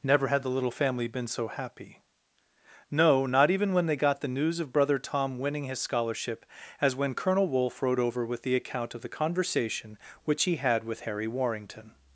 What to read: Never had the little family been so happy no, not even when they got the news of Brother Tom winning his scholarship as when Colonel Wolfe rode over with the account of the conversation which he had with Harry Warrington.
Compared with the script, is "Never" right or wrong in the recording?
right